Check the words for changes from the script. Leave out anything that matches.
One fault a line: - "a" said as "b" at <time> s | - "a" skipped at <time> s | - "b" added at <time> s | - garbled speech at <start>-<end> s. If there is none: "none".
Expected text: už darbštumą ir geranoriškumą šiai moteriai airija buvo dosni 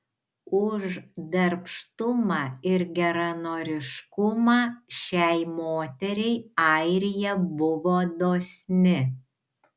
none